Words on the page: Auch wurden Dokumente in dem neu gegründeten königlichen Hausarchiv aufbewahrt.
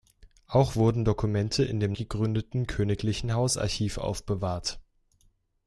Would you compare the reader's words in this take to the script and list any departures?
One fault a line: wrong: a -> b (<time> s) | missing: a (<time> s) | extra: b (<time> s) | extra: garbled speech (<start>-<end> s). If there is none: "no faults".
missing: neu (1.9 s)